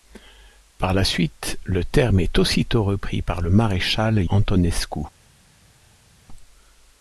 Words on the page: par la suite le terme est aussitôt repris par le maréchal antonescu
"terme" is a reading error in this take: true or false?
false